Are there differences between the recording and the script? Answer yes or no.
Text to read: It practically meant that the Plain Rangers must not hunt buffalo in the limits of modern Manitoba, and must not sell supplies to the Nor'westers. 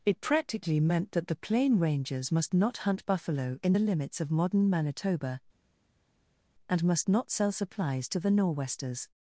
no